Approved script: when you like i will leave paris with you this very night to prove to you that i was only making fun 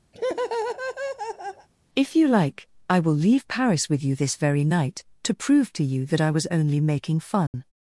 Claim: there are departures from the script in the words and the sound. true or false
true